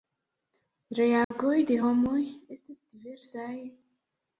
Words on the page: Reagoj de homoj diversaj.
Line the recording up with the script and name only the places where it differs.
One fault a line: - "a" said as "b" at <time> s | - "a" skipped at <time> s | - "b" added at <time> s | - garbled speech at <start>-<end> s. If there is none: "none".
- "estis" added at 2.6 s